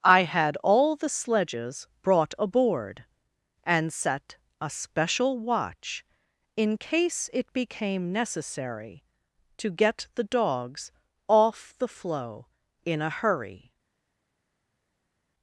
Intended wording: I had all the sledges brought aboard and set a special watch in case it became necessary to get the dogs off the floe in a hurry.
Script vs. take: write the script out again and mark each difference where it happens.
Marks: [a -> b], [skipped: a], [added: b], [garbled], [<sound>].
I had all the sledges brought aboard and set a special watch in case it became necessary to get the dogs off the floe in a hurry.